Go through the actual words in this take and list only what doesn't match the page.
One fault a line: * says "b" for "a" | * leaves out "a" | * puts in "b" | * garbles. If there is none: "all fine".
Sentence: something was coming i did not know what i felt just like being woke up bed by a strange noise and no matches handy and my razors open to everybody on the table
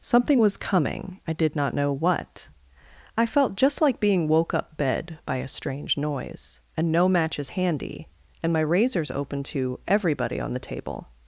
all fine